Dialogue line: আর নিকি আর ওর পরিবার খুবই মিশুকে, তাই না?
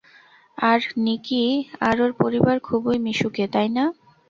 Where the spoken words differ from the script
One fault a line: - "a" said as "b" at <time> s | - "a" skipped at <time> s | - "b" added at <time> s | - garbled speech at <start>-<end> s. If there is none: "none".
none